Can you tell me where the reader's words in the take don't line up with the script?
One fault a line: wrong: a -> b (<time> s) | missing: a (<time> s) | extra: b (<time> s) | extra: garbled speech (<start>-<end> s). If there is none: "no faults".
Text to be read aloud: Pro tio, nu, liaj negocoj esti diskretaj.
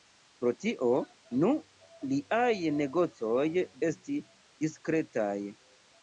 no faults